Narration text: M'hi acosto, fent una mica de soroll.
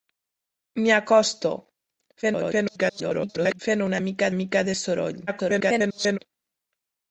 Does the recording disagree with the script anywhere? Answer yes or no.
yes